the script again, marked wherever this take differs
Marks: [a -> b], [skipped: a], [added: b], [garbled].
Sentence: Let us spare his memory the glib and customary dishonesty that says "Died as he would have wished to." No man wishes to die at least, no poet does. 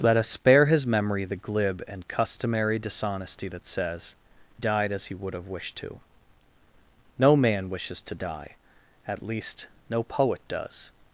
Let us spare his memory the glib and customary dishonesty that says "Died as he would have wished to." No man wishes to die at least, no poet does.